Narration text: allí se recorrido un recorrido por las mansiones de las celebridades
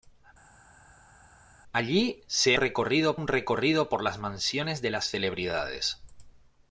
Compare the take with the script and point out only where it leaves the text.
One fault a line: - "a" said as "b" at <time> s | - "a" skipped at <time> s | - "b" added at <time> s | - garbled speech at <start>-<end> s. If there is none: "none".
none